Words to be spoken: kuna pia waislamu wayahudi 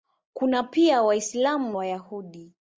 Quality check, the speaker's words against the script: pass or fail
pass